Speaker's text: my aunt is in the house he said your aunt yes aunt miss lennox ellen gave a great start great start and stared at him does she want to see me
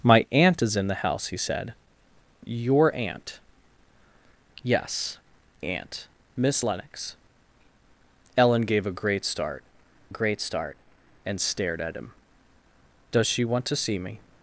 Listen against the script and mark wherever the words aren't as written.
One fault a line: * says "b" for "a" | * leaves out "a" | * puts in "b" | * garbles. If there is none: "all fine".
all fine